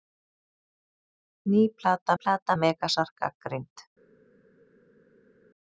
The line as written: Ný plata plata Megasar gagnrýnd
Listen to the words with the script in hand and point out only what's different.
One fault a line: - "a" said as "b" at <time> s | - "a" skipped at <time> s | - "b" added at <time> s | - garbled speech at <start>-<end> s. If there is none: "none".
none